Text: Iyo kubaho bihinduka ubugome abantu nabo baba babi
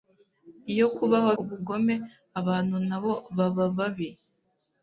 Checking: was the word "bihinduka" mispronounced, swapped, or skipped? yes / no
yes